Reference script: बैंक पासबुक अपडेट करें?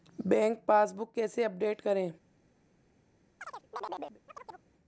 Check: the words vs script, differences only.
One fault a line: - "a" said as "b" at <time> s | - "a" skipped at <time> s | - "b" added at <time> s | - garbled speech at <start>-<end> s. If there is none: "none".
- "कैसे" added at 1.1 s